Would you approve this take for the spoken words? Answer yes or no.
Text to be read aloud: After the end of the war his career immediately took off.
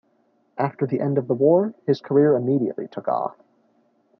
yes